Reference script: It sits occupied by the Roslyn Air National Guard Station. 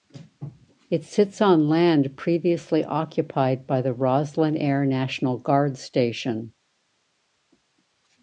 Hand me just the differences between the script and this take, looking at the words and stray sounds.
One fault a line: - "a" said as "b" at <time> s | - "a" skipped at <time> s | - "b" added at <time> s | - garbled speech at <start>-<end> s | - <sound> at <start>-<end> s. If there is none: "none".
- "on land previously" added at 1.4 s